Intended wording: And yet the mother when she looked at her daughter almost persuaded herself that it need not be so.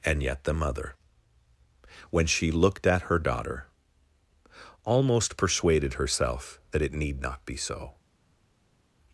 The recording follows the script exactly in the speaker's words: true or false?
true